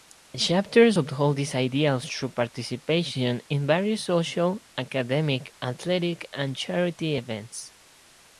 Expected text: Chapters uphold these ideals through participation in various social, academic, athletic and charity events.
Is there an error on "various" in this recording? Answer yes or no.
no